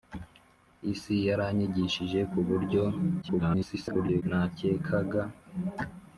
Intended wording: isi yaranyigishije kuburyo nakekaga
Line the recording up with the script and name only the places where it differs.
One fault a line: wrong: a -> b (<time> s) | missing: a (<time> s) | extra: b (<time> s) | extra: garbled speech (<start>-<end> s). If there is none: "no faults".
extra: garbled speech (3.2-4.2 s)